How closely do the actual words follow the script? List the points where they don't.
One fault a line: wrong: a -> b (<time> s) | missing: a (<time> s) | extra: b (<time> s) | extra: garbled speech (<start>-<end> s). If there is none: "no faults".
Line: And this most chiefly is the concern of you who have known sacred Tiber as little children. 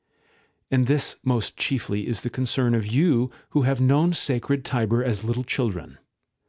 no faults